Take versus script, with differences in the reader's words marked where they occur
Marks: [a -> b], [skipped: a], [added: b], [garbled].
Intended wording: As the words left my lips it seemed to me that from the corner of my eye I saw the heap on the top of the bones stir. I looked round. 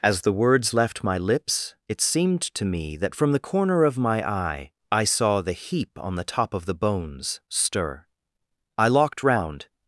As the words left my lips it seemed to me that from the corner of my eye I saw the heap on the top of the bones stir. I [looked -> locked] round.